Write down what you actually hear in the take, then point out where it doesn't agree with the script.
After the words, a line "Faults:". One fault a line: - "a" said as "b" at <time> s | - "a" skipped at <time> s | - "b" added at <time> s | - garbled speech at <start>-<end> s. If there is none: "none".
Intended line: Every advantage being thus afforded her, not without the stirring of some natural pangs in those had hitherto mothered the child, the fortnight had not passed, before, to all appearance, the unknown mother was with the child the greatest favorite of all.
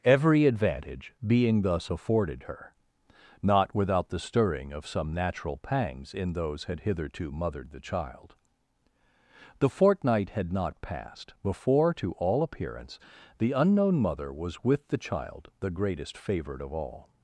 Every advantage being thus afforded her, not without the stirring of some natural pangs in those had hitherto mothered the child, the fortnight had not passed, before, to all appearance, the unknown mother was with the child the greatest favorite of all.
Faults:
none